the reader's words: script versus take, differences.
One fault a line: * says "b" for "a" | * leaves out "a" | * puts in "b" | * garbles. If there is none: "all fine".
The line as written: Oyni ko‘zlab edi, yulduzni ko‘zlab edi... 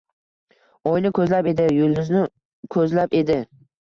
all fine